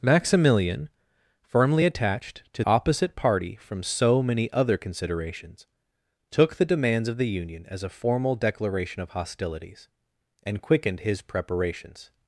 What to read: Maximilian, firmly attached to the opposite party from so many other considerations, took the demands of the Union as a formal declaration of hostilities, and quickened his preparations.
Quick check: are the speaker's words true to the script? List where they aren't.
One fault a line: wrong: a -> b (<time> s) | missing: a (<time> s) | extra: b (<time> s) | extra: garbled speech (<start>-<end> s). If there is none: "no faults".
missing: the (2.6 s)